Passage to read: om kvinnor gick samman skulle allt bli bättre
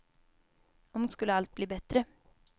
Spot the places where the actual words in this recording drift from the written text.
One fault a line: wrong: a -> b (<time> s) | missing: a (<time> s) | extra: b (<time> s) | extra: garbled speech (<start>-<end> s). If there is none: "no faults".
missing: kvinnor gick samman (1.1 s)